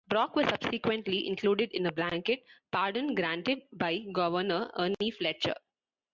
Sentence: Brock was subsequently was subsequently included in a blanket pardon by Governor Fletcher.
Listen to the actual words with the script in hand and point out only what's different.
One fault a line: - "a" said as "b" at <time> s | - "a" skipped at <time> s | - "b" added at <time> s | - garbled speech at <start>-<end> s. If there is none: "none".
- "was subsequently" skipped at 1.3 s
- "granted" added at 3.1 s
- "Ernie" added at 4.8 s